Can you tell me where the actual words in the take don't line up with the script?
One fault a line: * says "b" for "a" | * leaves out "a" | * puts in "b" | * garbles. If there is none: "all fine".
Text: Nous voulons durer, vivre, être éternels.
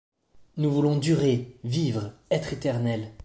all fine